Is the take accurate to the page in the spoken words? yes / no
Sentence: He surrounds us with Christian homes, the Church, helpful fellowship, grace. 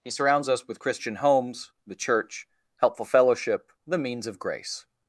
no